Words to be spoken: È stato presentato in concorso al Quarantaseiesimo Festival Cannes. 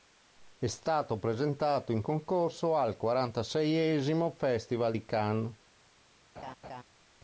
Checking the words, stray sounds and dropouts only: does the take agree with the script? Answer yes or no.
no